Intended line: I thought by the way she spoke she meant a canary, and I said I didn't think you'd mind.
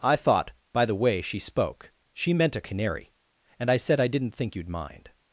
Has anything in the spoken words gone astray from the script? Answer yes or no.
no